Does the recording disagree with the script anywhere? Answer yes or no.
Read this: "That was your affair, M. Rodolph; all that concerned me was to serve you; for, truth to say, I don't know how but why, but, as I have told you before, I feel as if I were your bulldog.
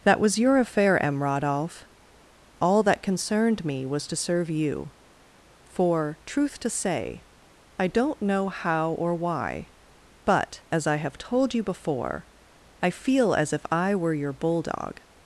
yes